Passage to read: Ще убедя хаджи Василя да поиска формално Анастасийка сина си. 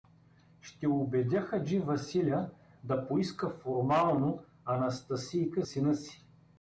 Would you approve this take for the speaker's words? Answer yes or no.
yes